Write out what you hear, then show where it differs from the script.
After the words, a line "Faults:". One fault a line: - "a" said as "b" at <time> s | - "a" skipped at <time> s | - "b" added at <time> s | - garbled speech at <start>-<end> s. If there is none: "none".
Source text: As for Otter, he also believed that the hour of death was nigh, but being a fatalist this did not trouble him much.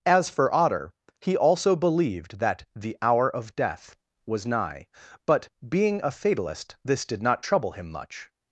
As for Otter, he also believed that the hour of death was nigh, but being a fatalist this did not trouble him much.
Faults:
none